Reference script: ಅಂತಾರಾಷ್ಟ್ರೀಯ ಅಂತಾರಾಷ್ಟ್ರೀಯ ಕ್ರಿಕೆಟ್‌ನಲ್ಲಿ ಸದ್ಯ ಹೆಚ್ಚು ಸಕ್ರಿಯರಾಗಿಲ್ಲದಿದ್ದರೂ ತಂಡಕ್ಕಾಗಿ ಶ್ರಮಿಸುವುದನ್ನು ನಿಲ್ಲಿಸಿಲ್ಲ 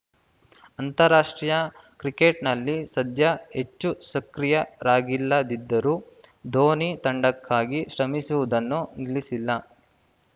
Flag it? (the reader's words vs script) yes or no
yes